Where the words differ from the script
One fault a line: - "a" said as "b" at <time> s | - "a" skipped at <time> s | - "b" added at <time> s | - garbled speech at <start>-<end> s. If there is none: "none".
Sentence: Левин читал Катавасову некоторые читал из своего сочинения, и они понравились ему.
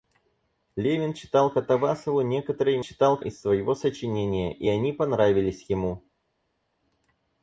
none